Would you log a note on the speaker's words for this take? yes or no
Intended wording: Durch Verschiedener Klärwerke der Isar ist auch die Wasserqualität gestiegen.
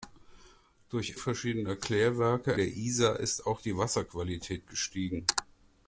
no